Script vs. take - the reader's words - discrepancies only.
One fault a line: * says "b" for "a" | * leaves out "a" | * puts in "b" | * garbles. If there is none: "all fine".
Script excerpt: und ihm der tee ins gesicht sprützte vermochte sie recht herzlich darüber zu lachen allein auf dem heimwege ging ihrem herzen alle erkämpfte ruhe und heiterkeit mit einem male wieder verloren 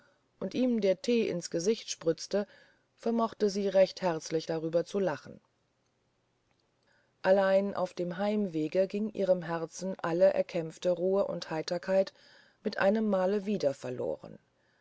all fine